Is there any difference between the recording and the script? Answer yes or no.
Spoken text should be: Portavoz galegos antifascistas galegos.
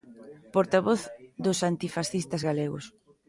yes